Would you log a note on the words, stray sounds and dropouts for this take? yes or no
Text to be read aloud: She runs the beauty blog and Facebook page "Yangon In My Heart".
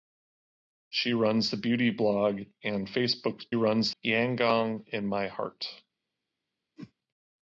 yes